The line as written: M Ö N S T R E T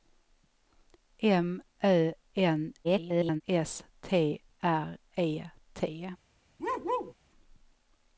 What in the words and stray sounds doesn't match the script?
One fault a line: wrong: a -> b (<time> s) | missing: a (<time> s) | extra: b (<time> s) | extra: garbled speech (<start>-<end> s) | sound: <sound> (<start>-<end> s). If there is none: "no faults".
extra: garbled speech (2.8-3.4 s)
sound: bark (6.6-7.1 s)